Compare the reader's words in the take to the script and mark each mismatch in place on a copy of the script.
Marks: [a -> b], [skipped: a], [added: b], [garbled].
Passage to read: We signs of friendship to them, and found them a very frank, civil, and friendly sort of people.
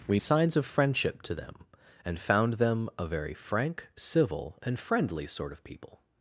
We signs of friendship to them, and found them a very frank, civil, and friendly sort of people.